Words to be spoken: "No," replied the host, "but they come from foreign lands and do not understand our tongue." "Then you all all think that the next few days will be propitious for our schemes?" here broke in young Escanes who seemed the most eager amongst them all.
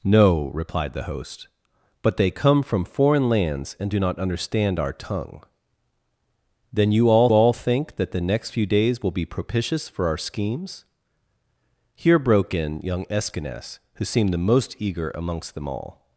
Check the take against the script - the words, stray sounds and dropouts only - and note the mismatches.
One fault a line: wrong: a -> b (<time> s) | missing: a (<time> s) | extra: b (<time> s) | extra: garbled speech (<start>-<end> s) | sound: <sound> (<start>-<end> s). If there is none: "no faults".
no faults